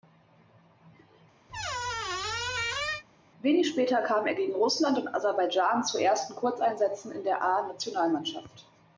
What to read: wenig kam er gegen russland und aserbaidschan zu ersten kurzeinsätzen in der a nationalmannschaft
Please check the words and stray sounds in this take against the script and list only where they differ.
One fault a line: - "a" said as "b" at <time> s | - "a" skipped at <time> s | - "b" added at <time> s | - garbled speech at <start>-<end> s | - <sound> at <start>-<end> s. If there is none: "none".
- squeak at 1.5-3.0 s
- "später" added at 3.7 s